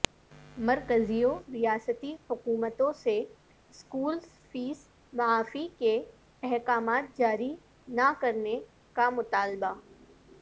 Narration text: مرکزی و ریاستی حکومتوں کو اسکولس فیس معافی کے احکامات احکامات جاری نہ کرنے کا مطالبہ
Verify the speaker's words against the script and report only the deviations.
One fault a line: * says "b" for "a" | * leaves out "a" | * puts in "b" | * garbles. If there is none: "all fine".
* says "سے" for "کو"
* leaves out "احکامات"